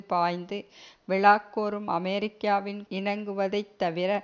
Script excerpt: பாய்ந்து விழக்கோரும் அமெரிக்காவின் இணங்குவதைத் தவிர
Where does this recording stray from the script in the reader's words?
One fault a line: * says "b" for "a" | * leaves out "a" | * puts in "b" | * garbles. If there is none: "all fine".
all fine